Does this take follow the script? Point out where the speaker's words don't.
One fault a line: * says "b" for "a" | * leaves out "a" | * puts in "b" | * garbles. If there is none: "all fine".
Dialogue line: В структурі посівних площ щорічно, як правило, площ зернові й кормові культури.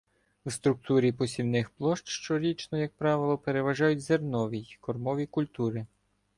* says "переважають" for "площ"